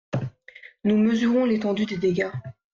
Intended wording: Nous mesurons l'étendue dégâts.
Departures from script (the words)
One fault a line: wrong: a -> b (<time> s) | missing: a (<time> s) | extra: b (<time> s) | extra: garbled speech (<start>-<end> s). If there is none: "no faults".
extra: des (1.8 s)